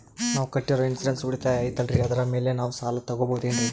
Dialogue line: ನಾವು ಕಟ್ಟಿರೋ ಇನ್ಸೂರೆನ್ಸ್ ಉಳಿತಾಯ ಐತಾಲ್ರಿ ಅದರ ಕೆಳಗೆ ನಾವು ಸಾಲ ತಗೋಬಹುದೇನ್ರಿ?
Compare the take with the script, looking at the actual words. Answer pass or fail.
fail